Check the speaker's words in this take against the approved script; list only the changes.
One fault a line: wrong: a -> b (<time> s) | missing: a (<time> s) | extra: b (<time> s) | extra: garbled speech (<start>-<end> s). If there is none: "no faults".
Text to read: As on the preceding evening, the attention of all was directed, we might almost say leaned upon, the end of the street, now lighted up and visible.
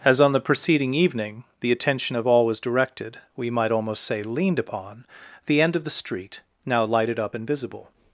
no faults